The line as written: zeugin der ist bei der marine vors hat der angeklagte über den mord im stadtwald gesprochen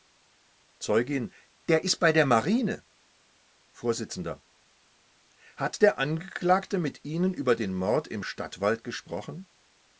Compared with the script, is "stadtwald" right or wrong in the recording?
right